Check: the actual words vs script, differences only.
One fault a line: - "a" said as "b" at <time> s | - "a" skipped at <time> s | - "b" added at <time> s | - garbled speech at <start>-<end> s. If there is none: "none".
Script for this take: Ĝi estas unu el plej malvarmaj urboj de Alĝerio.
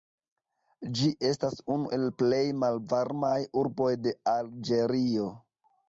none